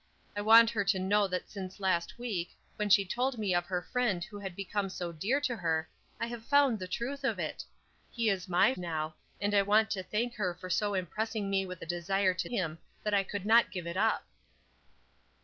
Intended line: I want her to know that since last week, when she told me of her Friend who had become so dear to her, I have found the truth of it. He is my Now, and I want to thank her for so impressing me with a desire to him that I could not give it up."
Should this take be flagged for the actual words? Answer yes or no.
no